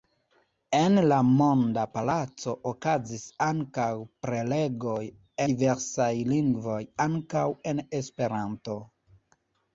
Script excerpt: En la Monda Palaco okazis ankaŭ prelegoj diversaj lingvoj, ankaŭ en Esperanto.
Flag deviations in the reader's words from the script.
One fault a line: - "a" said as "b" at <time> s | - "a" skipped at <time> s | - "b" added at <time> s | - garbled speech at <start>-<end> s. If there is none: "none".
none